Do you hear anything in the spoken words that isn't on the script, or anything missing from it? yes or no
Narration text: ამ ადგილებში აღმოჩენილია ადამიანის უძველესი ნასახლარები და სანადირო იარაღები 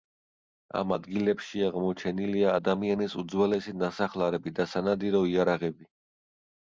no